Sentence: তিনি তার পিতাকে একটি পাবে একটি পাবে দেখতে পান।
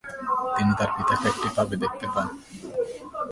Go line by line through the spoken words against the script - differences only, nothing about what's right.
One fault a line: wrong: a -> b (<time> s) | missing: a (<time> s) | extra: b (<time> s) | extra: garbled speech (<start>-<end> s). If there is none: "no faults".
missing: একটি পাবে (1.7 s)